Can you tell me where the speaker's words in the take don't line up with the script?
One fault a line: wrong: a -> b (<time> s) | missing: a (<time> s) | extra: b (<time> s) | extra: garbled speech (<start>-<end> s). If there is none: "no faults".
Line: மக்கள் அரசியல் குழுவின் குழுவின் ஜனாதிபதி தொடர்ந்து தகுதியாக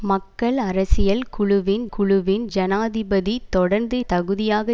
no faults